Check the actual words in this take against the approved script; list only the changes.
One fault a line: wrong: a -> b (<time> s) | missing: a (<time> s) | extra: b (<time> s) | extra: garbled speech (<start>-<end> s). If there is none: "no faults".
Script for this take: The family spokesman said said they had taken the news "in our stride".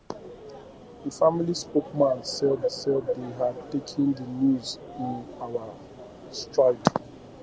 no faults